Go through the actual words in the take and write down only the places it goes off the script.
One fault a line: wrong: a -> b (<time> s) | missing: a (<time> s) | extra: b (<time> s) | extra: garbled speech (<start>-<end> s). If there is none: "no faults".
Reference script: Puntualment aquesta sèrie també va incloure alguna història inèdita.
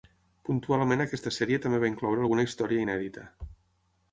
no faults